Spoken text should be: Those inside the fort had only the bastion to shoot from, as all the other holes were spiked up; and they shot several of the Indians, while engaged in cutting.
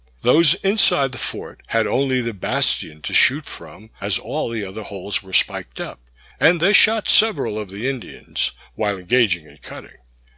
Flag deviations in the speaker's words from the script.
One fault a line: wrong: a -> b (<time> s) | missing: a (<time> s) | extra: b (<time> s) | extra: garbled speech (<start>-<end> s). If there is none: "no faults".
no faults